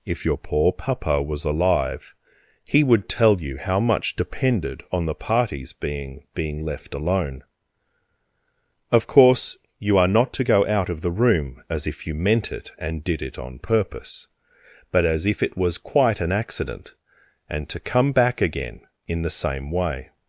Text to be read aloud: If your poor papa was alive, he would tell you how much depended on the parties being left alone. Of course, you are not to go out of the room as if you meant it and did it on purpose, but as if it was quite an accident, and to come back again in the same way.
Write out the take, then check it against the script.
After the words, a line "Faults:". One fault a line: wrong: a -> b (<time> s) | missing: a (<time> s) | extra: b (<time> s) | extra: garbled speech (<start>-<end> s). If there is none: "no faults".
If your poor papa was alive, he would tell you how much depended on the parties being being left alone. Of course, you are not to go out of the room as if you meant it and did it on purpose, but as if it was quite an accident, and to come back again in the same way.
Faults:
extra: being (6.3 s)